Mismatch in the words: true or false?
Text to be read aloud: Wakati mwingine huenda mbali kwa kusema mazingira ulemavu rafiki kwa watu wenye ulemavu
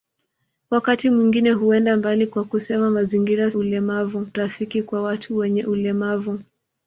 false